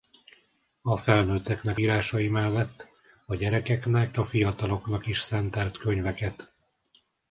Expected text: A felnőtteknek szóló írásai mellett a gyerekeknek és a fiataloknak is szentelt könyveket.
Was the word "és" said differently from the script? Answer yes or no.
yes